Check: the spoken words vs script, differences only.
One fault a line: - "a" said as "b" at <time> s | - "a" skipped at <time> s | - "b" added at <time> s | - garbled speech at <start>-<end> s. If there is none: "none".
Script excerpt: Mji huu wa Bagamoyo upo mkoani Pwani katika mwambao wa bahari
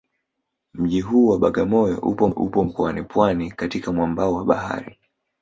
- "upo" added at 2.3 s